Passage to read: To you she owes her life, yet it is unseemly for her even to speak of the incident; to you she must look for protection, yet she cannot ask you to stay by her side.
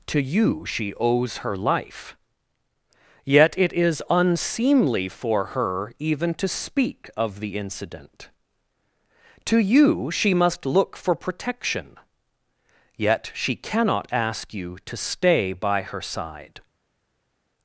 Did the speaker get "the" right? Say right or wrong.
right